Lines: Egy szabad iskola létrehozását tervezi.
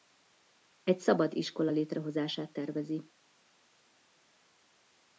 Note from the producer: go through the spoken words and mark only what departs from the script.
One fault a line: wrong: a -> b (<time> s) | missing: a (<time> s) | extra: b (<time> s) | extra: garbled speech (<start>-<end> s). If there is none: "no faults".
no faults